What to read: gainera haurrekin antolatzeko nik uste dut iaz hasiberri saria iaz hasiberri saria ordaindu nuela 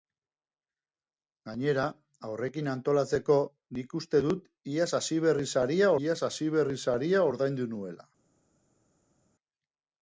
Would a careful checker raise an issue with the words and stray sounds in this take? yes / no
no